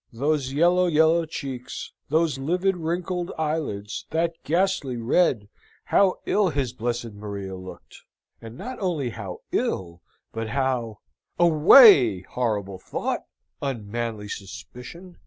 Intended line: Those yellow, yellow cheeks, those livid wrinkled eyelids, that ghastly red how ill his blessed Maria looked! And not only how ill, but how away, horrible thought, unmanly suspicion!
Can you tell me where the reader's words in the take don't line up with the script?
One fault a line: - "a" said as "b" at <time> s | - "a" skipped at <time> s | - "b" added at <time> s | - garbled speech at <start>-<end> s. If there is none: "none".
none